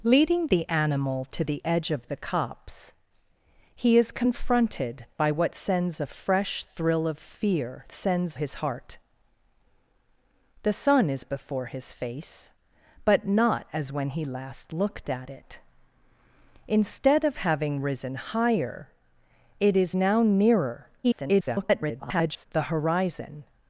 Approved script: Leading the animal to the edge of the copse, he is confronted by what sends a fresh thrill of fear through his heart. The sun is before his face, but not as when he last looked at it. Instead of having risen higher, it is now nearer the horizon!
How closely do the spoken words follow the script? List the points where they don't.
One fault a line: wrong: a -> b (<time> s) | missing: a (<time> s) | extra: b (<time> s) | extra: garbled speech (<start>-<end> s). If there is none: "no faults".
wrong: through -> sends (7.9 s)
extra: garbled speech (21.0-22.5 s)